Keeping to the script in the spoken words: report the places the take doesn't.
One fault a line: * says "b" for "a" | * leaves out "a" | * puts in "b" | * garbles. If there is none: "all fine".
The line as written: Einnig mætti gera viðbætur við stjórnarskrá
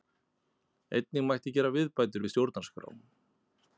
all fine